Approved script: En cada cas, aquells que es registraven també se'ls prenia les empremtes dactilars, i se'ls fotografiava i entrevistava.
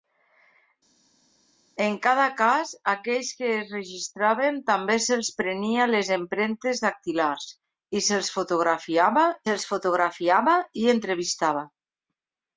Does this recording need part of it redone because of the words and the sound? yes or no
yes